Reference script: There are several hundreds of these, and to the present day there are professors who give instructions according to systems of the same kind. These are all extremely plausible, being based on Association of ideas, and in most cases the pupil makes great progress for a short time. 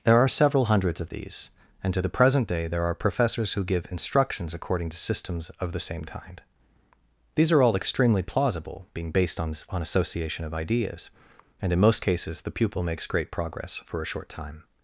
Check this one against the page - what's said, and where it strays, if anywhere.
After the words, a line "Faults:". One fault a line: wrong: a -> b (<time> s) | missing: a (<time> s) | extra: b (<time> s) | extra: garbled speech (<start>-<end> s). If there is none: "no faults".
There are several hundreds of these, and to the present day there are professors who give instructions according to systems of the same kind. These are all extremely plausible, being based on on Association of ideas, and in most cases the pupil makes great progress for a short time.
Faults:
extra: on (9.7 s)